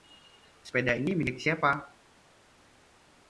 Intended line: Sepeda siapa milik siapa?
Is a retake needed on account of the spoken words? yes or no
yes